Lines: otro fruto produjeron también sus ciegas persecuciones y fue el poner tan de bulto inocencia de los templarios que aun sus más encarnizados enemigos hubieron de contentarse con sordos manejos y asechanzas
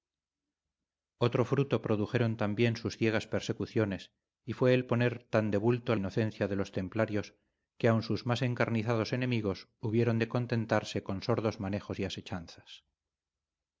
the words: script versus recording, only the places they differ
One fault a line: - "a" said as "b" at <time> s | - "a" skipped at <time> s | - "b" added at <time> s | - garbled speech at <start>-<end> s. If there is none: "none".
none